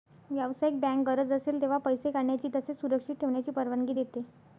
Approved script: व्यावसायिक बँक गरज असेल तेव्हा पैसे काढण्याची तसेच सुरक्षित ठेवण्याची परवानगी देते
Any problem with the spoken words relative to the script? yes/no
no